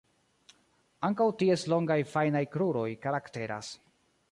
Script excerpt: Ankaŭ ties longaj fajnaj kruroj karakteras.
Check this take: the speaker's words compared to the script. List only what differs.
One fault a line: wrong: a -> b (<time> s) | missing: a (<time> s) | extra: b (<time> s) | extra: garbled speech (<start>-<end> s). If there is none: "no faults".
no faults